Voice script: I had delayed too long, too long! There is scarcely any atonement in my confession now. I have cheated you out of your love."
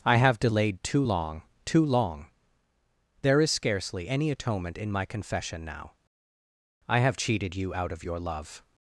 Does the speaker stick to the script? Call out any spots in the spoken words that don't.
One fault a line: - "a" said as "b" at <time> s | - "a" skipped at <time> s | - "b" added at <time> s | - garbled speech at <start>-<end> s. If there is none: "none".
- "had" said as "have" at 0.1 s